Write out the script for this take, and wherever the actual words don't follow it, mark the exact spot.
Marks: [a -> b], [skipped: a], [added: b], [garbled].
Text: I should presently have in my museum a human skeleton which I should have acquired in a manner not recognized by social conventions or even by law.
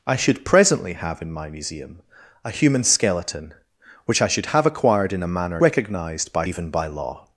I should presently have in my museum a human skeleton which I should have acquired in a manner [skipped: not] recognized by [skipped: social conventions or] even by law.